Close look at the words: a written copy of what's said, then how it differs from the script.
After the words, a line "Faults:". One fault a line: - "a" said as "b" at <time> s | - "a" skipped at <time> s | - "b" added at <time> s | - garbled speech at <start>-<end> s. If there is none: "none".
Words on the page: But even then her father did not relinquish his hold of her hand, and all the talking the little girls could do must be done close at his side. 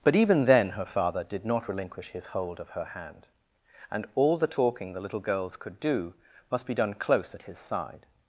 But even then her father did not relinquish his hold of her hand, and all the talking the little girls could do must be done close at his side.
Faults:
none